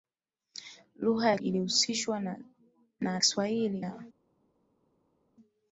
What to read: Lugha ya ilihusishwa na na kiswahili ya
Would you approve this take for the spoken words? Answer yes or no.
yes